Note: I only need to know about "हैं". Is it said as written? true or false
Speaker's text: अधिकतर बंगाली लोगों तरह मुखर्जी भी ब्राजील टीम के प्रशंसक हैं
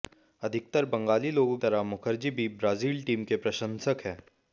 true